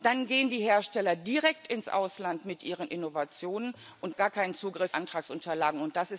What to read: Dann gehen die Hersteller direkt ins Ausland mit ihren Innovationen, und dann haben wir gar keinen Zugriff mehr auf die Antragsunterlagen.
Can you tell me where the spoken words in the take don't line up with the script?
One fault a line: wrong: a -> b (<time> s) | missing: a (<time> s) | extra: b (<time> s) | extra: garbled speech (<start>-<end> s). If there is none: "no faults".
missing: dann haben wir (4.2 s)
missing: mehr auf die (5.0 s)